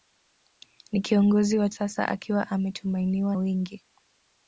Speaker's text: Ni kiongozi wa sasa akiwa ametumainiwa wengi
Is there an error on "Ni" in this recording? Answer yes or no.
no